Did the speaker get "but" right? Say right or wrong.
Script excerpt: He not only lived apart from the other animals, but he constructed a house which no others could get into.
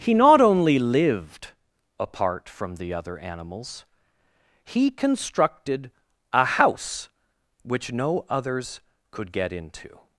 wrong